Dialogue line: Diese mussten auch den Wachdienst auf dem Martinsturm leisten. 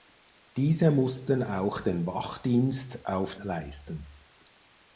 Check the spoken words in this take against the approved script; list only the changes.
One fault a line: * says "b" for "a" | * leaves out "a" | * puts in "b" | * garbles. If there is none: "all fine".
* leaves out "dem Martinsturm"